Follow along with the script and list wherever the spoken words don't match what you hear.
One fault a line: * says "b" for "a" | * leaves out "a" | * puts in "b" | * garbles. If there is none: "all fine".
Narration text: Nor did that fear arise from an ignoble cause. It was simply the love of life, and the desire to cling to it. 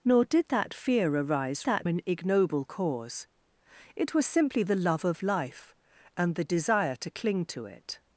* says "that" for "from"